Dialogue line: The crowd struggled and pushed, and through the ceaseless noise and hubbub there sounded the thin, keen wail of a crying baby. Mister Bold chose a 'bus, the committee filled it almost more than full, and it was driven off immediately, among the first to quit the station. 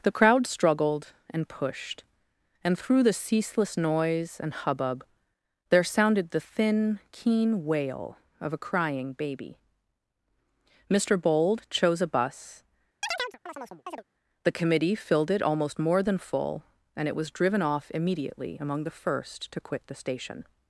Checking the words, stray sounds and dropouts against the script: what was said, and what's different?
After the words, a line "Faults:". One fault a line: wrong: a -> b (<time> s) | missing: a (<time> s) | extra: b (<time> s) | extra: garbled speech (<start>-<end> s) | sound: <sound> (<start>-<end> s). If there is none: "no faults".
The crowd struggled and pushed, and through the ceaseless noise and hubbub there sounded the thin, keen wail of a crying baby. Mister Bold chose a 'bus, the committee filled it almost more than full, and it was driven off immediately, among the first to quit the station.
Faults:
sound: chirp (13.0-14.0 s)